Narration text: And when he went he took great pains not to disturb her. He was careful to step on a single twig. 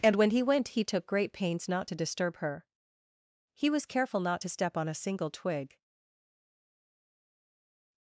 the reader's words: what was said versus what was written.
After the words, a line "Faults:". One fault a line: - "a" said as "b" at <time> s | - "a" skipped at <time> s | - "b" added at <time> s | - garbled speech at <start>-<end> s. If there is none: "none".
And when he went he took great pains not to disturb her. He was careful not to step on a single twig.
Faults:
- "not" added at 4.2 s